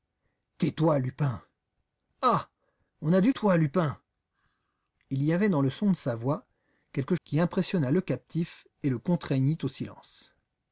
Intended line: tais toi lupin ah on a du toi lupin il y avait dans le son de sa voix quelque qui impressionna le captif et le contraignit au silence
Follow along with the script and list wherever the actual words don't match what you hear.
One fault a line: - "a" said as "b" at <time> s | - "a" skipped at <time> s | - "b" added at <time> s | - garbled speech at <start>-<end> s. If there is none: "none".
none